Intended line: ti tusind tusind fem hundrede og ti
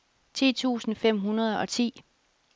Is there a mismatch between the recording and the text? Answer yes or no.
yes